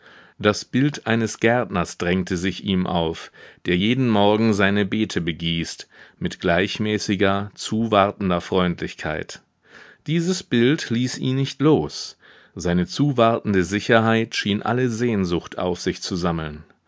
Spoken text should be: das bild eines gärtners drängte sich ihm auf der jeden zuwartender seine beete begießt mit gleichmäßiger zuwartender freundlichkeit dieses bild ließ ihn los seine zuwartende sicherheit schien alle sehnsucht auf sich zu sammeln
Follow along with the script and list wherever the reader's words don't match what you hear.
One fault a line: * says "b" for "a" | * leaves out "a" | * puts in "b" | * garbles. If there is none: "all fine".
* says "morgen" for "zuwartender"
* puts in "nicht"